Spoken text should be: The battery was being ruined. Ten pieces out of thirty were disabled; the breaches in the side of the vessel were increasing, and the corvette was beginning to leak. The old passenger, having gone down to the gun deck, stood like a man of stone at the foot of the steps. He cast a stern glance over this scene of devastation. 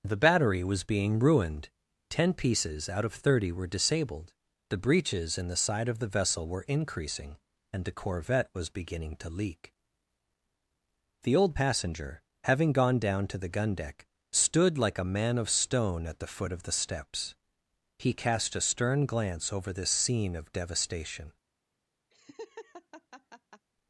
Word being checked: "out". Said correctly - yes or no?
yes